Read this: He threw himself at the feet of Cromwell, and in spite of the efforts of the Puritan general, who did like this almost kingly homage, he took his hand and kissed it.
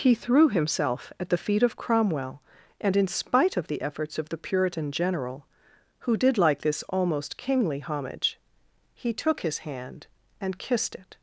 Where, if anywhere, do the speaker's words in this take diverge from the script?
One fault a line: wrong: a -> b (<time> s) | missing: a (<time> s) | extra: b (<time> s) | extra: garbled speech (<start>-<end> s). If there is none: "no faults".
no faults